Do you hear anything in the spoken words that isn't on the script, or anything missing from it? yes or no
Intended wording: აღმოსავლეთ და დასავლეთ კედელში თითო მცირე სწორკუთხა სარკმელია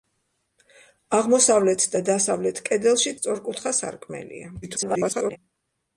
yes